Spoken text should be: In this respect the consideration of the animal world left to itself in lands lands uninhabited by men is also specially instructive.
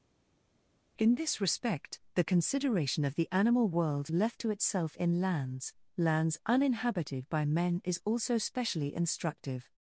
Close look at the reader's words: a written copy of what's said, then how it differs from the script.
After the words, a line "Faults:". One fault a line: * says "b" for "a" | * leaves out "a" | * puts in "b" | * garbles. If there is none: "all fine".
In this respect the consideration of the animal world left to itself in lands lands uninhabited by men is also specially instructive.
Faults:
all fine